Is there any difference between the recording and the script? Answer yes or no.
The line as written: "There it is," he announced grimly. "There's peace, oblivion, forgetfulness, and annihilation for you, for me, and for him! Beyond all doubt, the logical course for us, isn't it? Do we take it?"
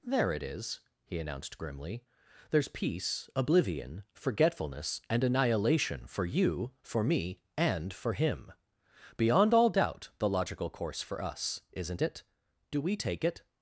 no